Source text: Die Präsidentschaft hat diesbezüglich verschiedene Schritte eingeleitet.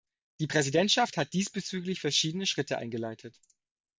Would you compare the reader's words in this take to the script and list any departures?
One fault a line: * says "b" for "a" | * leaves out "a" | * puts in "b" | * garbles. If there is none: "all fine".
all fine